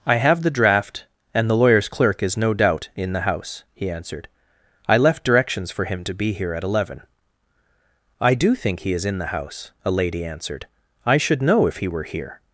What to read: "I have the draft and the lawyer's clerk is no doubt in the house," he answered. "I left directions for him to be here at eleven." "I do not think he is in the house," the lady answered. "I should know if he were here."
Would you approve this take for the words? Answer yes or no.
no